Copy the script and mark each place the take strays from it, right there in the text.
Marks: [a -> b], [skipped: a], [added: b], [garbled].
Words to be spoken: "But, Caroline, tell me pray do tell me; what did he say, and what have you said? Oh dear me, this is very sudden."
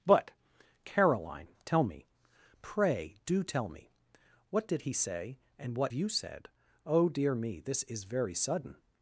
"But, Caroline, tell me pray do tell me; what did he say, and what [skipped: have] you said? Oh dear me, this is very sudden."